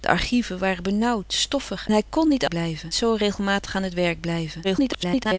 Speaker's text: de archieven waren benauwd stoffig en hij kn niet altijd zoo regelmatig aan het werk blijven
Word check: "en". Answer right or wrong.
wrong